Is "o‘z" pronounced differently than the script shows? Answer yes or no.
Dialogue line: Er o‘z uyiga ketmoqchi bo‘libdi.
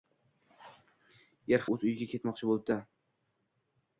no